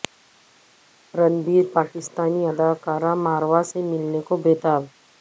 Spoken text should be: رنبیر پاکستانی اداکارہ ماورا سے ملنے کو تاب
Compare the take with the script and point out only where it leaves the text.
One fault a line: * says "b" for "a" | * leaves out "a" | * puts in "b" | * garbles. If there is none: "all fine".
* puts in "بے"